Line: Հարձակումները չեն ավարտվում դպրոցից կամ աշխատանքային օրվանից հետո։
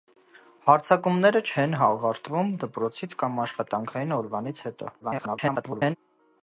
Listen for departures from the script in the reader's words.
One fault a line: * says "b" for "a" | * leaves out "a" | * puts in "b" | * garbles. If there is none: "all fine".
* garbles